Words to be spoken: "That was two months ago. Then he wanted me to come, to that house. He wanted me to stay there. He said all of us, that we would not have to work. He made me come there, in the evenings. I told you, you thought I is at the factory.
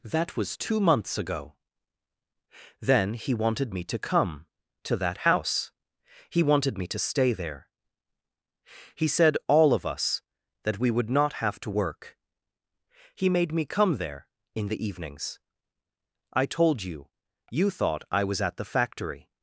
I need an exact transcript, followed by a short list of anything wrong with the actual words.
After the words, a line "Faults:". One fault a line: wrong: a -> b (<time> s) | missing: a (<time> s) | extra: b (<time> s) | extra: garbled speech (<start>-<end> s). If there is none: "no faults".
"That was two months ago. Then he wanted me to come, to that house. He wanted me to stay there. He said all of us, that we would not have to work. He made me come there, in the evenings. I told you, you thought I was at the factory.
Faults:
wrong: is -> was (18.2 s)